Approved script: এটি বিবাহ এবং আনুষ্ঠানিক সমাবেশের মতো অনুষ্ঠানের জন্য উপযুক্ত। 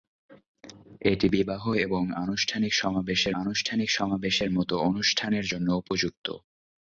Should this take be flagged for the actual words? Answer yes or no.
yes